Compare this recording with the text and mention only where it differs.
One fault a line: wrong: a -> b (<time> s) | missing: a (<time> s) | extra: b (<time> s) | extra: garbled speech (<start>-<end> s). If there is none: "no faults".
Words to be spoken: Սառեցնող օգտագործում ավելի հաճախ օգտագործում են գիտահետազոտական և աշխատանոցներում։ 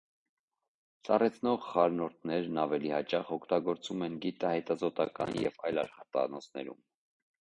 wrong: օգտագործում -> խառնուրդներն (1.7 s)
extra: այլ (5.7 s)